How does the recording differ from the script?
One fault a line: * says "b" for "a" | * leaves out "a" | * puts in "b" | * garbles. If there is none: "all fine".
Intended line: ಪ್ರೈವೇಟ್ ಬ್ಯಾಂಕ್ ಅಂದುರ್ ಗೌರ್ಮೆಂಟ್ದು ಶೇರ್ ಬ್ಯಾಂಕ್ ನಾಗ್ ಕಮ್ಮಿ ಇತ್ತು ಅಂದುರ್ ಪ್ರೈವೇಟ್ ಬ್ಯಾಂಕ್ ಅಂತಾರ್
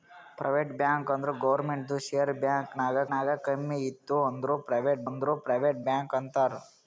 * puts in "ನಾಗ್"
* puts in "ಅಂದುರ್ ಪ್ರೈವೇಟ್"